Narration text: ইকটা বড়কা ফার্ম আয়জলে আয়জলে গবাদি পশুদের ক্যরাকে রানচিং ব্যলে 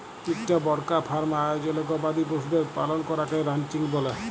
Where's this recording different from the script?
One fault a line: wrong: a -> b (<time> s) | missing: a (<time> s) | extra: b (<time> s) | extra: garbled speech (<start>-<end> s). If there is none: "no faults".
missing: আয়জলে (1.8 s)
extra: পালল (2.8 s)